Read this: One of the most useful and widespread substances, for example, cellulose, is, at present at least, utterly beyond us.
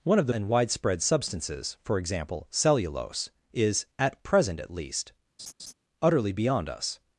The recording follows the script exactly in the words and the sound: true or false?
false